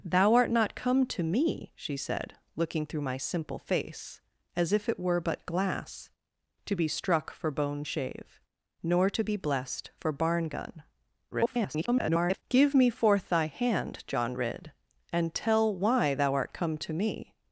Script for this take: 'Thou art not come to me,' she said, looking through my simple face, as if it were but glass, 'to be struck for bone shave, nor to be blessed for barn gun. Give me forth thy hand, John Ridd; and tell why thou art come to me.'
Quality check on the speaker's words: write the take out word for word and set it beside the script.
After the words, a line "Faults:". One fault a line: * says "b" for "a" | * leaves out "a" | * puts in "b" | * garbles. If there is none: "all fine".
'Thou art not come to me,' she said, looking through my simple face, as if it were but glass, 'to be struck for bone shave, nor to be blessed for barn gun. [garbled] Give me forth thy hand, John Ridd; and tell why thou art come to me.'
Faults:
* garbles